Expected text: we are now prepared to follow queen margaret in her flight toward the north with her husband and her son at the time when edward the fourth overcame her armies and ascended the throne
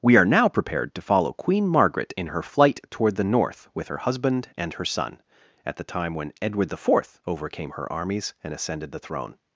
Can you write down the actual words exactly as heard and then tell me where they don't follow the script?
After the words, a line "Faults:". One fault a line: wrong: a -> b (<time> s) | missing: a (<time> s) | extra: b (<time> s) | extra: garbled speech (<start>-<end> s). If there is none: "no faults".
we are now prepared to follow queen margaret in her flight toward the north with her husband and her son at the time when edward the fourth overcame her armies and ascended the throne
Faults:
no faults